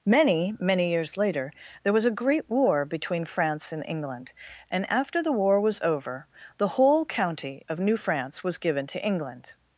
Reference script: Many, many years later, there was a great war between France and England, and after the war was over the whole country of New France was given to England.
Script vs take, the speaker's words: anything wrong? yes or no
yes